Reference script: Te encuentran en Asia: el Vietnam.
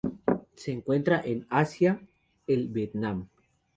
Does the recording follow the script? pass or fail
fail